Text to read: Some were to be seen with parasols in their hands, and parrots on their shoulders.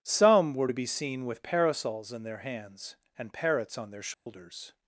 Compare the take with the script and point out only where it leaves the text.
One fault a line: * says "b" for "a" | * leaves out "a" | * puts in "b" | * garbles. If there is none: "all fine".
all fine